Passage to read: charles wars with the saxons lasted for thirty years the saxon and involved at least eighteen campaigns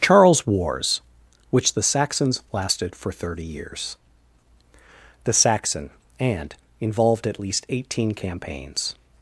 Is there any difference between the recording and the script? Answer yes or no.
yes